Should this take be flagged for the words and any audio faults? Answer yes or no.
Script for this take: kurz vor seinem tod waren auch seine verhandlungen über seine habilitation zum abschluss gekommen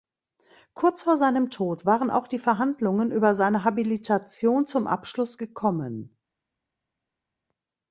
yes